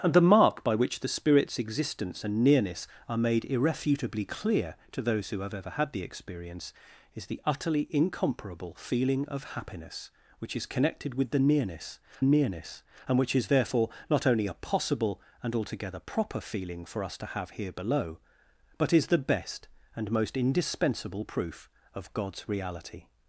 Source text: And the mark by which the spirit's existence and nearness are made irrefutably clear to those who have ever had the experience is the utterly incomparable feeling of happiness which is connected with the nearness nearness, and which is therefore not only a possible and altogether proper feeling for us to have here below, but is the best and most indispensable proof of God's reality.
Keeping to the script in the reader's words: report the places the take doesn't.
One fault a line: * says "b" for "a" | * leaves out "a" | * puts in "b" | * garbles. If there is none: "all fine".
all fine